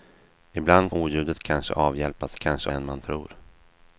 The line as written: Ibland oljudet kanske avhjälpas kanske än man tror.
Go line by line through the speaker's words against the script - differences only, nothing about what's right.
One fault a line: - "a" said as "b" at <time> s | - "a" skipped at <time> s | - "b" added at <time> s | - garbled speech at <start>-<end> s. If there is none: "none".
none